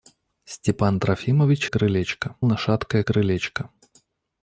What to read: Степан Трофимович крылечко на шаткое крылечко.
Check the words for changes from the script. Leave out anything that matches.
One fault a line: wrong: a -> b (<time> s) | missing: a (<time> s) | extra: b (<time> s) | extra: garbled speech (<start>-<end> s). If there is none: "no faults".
no faults